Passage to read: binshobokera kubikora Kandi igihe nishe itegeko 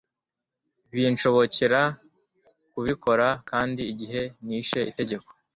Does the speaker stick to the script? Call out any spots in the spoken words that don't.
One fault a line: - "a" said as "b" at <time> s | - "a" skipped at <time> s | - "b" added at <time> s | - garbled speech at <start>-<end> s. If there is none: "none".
none